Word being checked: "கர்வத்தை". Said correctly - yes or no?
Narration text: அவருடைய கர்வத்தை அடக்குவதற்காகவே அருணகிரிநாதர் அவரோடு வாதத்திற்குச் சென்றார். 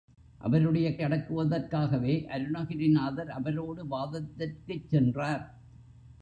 no